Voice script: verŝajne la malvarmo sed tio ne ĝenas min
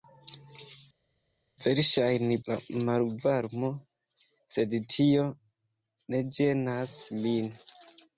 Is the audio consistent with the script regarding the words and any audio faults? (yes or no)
yes